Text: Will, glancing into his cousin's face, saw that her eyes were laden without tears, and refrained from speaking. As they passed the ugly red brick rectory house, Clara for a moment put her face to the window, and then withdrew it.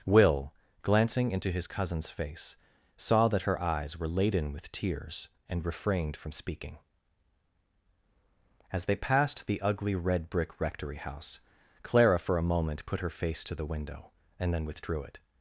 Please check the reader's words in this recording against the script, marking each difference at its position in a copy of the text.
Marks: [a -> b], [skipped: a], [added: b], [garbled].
Will, glancing into his cousin's face, saw that her eyes were laden [without -> with] tears, and refrained from speaking. As they passed the ugly red brick rectory house, Clara for a moment put her face to the window, and then withdrew it.